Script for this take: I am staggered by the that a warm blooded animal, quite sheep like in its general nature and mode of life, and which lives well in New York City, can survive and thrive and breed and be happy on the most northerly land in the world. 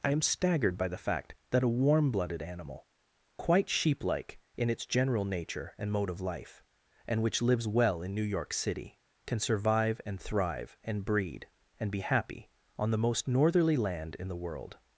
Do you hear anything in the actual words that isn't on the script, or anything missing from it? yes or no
yes